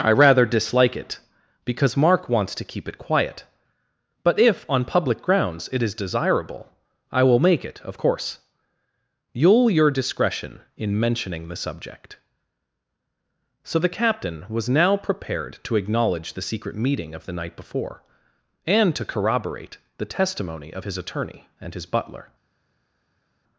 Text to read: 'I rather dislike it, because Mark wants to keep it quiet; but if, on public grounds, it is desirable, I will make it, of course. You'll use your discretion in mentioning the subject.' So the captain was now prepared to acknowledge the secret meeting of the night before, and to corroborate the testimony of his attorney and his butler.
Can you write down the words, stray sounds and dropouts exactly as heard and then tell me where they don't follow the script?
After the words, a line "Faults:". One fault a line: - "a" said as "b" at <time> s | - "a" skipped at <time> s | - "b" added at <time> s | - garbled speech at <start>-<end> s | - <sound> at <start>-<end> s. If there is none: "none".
'I rather dislike it, because Mark wants to keep it quiet; but if, on public grounds, it is desirable, I will make it, of course. You'll your discretion in mentioning the subject.' So the captain was now prepared to acknowledge the secret meeting of the night before, and to corroborate the testimony of his attorney and his butler.
Faults:
- "use" skipped at 9.7 s